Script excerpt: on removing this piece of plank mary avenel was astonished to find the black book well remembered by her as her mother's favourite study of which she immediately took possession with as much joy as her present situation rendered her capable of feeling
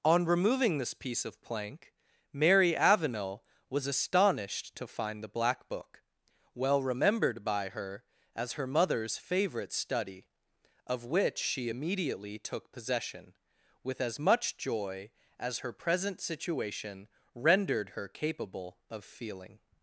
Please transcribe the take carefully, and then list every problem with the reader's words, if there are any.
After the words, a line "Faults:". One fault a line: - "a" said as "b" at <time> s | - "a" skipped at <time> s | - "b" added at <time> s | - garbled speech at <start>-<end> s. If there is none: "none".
on removing this piece of plank mary avenel was astonished to find the black book well remembered by her as her mother's favourite study of which she immediately took possession with as much joy as her present situation rendered her capable of feeling
Faults:
none